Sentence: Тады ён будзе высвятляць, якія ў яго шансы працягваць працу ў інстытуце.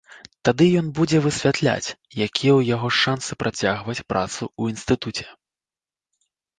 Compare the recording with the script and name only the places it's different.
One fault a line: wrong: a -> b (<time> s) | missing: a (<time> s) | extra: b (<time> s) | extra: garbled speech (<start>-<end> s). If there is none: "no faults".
no faults